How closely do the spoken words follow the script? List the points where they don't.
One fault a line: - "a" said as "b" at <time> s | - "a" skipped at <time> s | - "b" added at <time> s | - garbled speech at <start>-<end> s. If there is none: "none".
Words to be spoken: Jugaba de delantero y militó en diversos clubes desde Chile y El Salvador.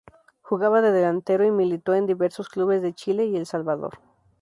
- "desde" said as "de" at 2.8 s